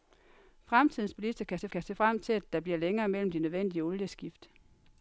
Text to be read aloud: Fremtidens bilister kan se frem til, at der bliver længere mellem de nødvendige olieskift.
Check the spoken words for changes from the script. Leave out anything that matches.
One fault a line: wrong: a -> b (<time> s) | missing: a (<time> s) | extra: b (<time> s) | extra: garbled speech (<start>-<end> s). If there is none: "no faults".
extra: kan se (1.7 s)